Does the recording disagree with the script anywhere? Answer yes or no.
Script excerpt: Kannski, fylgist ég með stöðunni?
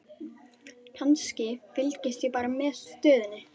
yes